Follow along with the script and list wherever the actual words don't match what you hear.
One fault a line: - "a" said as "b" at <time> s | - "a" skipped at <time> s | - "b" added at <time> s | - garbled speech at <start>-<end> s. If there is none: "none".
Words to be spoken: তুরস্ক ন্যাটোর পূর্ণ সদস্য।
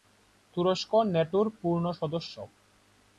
none